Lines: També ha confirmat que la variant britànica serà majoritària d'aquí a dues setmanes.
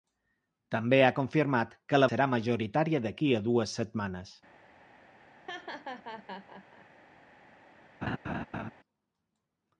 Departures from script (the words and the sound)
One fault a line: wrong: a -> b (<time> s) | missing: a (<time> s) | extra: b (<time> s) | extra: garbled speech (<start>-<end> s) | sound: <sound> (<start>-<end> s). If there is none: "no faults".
missing: variant britànica (2.1 s)
sound: laugh (5.5-6.9 s)
sound: laugh (8.0-8.7 s)